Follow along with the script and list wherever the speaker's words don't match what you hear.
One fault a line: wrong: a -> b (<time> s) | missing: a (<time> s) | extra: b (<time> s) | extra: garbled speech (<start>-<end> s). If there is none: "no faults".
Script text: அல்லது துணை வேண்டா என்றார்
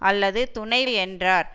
missing: வேண்டா (0.8 s)